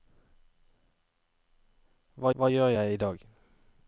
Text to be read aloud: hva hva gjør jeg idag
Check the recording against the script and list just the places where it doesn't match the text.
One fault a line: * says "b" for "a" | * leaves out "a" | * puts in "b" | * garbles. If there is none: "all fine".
all fine